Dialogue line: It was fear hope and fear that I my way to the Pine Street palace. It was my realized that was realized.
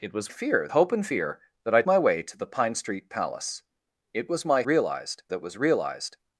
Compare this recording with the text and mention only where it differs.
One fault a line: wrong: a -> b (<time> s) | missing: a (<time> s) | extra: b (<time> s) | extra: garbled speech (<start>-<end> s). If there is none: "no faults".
no faults